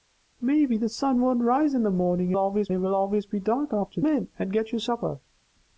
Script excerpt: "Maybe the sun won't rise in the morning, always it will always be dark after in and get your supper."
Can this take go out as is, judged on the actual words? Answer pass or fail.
pass